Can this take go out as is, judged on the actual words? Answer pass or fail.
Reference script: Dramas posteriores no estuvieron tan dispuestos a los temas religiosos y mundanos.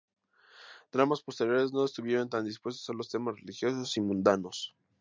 pass